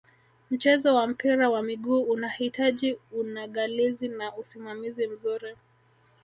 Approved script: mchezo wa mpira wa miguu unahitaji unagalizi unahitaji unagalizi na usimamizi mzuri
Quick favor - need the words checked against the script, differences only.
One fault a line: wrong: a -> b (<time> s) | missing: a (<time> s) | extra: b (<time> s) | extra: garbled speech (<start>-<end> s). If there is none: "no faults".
missing: unahitaji unagalizi (4.1 s)